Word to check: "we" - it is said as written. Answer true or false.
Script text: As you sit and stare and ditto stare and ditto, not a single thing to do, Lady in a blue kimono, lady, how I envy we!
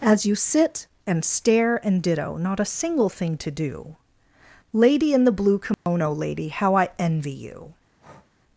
false